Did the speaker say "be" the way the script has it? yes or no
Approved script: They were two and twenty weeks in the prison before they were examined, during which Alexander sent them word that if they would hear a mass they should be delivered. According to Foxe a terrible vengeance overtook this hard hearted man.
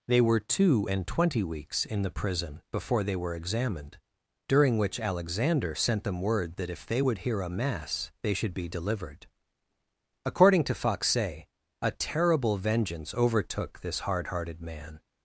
yes